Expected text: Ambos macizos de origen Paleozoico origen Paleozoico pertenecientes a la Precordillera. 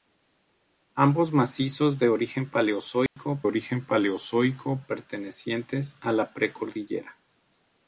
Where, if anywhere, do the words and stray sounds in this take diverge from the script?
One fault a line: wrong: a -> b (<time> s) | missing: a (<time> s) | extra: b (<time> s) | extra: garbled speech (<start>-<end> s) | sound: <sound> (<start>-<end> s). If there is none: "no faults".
sound: dropout (3.1-3.2 s)